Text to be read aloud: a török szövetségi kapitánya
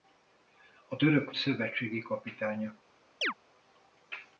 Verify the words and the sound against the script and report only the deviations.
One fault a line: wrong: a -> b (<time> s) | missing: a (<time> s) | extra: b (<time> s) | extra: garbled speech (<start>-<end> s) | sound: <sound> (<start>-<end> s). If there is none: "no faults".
sound: chirp (3.2-3.3 s)